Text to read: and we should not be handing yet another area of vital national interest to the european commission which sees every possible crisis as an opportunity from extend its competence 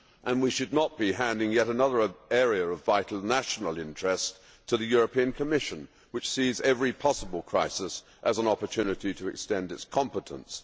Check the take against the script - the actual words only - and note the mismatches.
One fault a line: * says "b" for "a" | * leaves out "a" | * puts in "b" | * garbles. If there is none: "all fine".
* says "to" for "from"